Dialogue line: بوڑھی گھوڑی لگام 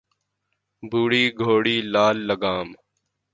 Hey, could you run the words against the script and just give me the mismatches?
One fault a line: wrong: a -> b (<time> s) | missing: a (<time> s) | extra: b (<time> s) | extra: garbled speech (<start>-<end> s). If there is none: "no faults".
extra: لال (1.9 s)